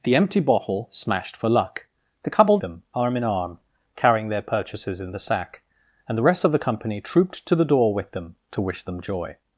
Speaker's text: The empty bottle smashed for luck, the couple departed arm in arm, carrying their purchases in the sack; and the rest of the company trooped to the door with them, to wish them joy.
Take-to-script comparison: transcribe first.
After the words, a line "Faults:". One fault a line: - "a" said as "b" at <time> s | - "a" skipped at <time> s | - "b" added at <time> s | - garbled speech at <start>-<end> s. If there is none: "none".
The empty bottle smashed for luck, the couple them arm in arm, carrying their purchases in the sack; and the rest of the company trooped to the door with them, to wish them joy.
Faults:
- "departed" said as "them" at 2.6 s